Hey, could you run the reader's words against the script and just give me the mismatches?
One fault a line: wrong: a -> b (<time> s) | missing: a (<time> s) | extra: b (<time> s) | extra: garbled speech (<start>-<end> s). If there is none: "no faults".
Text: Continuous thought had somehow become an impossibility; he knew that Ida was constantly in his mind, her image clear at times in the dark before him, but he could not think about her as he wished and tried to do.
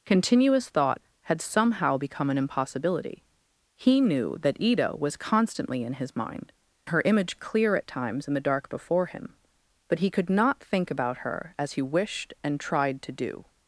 no faults